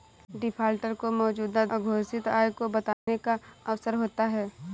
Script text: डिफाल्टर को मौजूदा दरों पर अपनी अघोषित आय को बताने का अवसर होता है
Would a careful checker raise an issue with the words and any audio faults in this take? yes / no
yes